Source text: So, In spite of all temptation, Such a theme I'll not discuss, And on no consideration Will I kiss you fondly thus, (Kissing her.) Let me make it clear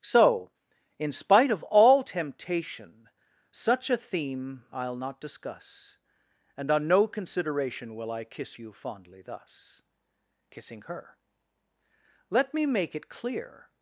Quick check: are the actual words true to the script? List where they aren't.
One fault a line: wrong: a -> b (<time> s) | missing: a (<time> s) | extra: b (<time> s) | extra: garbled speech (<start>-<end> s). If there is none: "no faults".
no faults